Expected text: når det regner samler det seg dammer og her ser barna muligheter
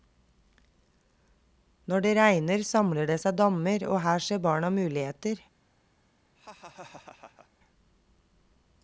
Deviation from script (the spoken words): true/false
false